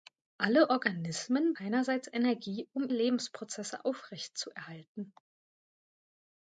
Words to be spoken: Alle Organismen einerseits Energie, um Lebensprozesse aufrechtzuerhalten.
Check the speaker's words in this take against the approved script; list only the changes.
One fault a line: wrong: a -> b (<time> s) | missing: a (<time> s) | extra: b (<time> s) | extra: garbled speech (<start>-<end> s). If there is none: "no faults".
no faults